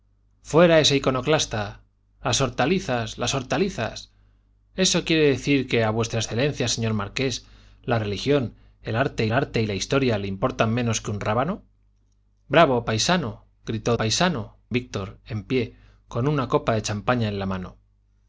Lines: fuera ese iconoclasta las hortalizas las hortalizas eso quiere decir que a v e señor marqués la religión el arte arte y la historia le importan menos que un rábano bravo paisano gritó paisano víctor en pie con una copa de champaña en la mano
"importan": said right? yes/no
yes